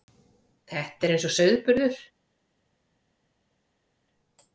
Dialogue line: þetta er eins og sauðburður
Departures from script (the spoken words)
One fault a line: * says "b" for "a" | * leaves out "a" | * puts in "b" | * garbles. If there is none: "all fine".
all fine